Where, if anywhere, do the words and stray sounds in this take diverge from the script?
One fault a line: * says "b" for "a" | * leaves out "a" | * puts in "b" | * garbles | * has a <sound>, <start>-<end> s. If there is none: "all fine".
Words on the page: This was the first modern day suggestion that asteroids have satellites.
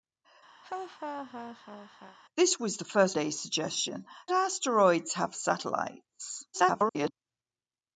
* has a laugh, 0.6-2.2 s
* leaves out "modern"
* leaves out "that"
* garbles